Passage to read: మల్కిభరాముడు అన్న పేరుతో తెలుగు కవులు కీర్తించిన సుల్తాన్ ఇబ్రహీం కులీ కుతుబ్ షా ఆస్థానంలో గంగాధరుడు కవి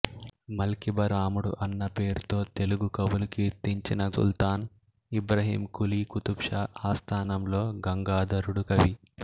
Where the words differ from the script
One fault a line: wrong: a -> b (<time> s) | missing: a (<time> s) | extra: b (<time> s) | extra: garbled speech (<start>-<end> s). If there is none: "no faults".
no faults